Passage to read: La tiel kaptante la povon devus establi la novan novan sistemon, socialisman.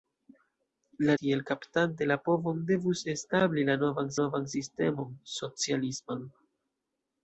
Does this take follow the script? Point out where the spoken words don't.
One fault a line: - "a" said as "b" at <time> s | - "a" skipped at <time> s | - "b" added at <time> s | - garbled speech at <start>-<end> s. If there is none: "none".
none